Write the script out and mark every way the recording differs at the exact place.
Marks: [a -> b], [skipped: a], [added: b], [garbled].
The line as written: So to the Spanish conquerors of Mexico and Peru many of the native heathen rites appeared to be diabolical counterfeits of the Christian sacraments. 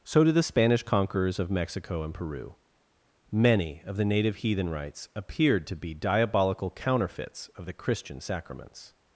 So [to -> did] the Spanish conquerors of Mexico and Peru many of the native heathen rites appeared to be diabolical counterfeits of the Christian sacraments.